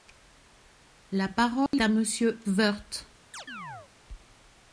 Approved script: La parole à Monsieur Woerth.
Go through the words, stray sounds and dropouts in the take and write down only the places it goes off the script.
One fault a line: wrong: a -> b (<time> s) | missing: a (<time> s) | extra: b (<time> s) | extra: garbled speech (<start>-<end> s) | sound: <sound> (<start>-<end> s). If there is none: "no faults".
sound: dropout (1.7-1.7 s)
sound: chirp (3.3-3.9 s)